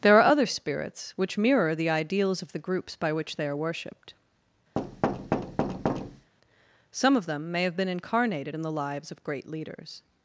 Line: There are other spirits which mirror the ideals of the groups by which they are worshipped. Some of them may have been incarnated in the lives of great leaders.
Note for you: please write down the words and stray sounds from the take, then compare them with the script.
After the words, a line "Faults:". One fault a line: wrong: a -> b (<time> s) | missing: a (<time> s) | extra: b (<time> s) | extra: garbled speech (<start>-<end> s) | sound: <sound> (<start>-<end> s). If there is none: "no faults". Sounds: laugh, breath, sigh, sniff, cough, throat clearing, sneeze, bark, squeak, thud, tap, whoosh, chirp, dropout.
There are other spirits which mirror the ideals of the groups by which they are worshipped. Some of them may have been incarnated in the lives of great leaders.
Faults:
sound: thud (4.8-6.3 s)